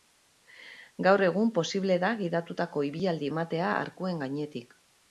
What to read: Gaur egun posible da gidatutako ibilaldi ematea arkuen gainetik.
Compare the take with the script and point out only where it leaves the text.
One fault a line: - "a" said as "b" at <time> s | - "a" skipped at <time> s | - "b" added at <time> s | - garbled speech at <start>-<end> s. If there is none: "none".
none